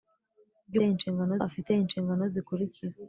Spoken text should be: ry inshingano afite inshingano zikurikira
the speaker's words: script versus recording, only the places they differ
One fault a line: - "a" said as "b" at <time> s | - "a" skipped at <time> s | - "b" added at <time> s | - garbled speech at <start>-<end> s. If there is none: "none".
none